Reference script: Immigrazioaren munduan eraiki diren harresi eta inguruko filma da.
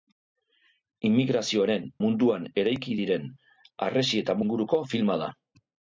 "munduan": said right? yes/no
yes